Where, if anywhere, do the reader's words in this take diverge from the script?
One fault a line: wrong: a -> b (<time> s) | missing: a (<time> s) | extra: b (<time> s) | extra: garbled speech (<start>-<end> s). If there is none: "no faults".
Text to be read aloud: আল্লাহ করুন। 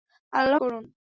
no faults